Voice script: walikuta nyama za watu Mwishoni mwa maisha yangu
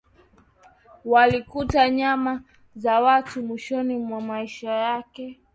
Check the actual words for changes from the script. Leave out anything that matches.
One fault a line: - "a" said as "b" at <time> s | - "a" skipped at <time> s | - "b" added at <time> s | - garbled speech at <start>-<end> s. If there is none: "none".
- "yangu" said as "yake" at 4.7 s